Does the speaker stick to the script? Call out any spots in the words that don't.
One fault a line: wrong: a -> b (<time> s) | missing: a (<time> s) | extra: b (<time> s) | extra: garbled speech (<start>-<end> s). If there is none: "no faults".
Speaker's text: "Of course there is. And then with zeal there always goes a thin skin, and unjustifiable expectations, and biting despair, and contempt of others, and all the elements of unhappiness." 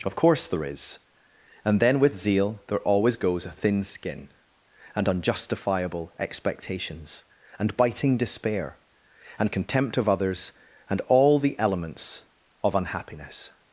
no faults